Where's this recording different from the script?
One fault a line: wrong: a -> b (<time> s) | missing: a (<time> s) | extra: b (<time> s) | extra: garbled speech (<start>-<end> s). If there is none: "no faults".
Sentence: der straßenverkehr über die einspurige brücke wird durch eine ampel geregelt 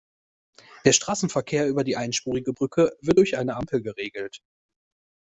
no faults